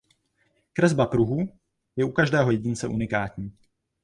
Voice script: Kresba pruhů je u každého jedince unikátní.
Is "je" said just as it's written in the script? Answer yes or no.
yes